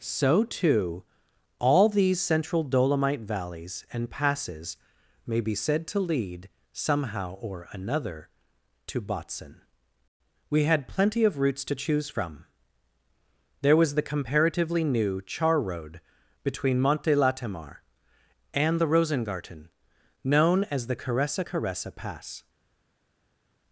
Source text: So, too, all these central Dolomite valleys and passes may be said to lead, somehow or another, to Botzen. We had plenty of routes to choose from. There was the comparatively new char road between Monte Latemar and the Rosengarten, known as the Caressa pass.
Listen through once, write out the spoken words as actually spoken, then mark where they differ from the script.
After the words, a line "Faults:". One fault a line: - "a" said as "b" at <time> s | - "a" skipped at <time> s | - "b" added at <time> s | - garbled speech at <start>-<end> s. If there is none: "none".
So, too, all these central Dolomite valleys and passes may be said to lead, somehow or another, to Botzen. We had plenty of routes to choose from. There was the comparatively new char road between Monte Latemar and the Rosengarten, known as the Caressa Caressa pass.
Faults:
- "Caressa" added at 21.4 s